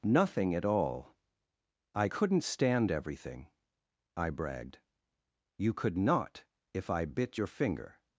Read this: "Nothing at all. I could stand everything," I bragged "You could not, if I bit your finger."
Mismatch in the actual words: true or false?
true